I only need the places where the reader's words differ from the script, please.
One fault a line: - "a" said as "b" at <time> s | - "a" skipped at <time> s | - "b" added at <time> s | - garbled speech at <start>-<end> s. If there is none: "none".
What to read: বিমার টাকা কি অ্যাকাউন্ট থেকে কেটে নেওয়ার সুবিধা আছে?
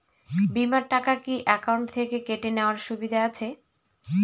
none